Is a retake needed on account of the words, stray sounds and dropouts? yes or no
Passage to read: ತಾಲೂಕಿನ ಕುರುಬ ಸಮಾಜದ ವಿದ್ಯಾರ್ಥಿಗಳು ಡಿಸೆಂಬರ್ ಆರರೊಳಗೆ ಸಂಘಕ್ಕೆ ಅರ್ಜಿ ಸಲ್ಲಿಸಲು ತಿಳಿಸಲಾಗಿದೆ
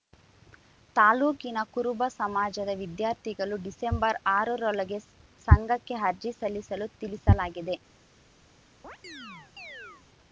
yes